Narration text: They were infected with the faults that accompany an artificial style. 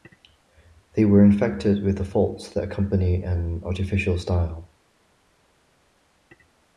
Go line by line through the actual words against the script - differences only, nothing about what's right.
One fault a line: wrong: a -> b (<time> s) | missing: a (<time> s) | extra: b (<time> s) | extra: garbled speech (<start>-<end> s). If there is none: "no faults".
no faults